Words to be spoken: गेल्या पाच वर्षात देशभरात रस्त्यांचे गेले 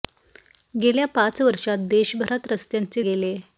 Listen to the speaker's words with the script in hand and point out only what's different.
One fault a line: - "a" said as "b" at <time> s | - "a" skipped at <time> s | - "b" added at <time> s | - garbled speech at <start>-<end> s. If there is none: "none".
none